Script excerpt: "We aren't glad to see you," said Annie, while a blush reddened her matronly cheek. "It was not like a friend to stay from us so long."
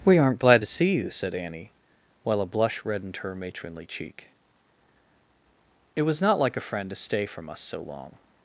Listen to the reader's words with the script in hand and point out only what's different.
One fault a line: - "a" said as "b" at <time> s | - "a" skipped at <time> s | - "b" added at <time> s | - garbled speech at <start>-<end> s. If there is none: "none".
none